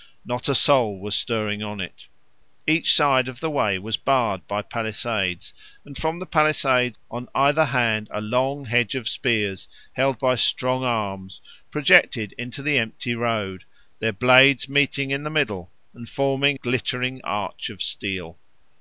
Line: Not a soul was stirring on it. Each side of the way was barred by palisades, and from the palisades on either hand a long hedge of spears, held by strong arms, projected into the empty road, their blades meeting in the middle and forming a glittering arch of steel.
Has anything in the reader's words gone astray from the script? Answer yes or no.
yes